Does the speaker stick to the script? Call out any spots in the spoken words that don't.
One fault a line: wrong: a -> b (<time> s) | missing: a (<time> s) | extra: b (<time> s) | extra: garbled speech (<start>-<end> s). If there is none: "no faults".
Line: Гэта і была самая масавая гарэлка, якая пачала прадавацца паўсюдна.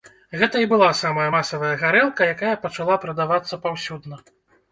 no faults